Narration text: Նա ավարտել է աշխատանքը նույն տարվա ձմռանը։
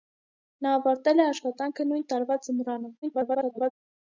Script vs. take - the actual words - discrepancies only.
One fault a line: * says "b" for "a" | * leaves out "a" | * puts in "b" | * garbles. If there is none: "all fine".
* garbles